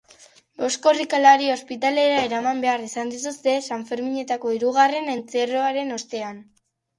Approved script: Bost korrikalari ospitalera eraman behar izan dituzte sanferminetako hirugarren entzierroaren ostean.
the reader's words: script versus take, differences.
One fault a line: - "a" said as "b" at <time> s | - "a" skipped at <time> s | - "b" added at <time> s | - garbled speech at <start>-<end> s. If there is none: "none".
none